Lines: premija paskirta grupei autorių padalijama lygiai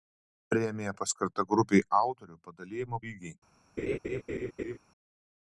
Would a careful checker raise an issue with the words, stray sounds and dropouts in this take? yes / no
yes